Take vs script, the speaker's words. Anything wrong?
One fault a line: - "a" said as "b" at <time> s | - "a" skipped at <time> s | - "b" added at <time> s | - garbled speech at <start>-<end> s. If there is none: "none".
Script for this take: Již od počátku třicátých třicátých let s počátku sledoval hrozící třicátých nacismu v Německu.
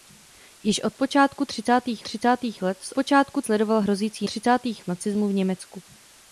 none